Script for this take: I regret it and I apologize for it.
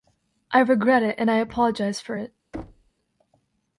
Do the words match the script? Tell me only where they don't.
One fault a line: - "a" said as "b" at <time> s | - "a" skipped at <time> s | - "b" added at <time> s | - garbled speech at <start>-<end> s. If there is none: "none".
none